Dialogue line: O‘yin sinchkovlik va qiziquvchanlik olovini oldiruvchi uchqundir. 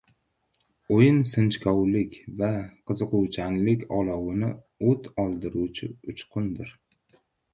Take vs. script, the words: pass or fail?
fail